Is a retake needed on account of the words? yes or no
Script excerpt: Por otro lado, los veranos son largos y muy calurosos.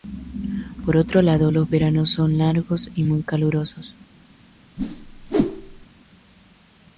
no